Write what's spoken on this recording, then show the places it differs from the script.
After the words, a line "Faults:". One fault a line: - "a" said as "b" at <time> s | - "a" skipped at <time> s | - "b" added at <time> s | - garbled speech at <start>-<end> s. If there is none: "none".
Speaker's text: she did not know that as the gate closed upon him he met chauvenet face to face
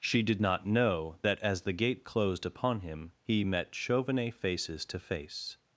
she did not know that as the gate closed upon him he met chauvenet faces to face
Faults:
- "face" said as "faces" at 4.3 s